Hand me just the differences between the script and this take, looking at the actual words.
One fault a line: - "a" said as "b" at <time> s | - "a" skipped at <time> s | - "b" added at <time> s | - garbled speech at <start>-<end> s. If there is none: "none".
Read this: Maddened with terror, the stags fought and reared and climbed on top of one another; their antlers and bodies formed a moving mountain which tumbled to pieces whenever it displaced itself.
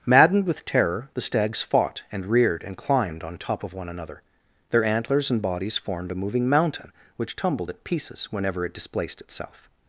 - "to" said as "at" at 7.7 s